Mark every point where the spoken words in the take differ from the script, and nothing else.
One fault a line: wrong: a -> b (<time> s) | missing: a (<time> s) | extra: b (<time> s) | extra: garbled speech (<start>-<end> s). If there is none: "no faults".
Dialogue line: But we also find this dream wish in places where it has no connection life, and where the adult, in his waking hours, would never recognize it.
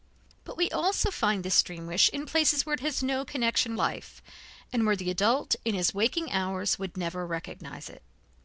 no faults